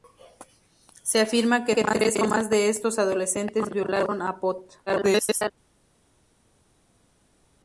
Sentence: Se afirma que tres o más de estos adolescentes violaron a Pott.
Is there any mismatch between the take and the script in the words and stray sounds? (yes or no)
yes